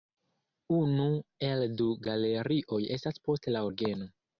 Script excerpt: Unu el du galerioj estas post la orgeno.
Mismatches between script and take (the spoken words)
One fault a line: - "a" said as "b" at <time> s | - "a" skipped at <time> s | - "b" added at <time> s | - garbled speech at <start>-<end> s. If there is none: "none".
none